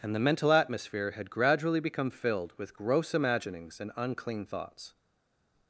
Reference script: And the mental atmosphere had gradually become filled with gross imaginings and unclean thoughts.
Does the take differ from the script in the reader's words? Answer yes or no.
no